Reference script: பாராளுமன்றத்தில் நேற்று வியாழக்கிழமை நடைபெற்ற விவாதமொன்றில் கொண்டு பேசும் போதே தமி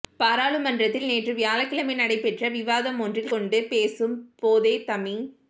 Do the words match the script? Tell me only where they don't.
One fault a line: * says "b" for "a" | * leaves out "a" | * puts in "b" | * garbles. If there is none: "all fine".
all fine